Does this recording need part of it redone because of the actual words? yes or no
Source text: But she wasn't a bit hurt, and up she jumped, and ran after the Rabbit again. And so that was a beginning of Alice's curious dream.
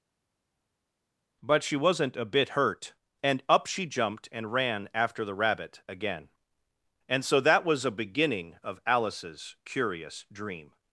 no